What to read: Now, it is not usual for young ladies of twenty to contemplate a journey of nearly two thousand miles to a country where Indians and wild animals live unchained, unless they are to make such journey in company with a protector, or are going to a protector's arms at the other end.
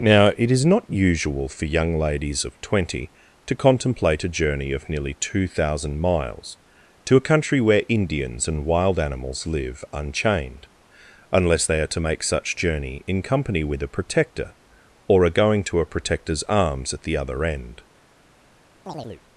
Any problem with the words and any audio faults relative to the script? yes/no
yes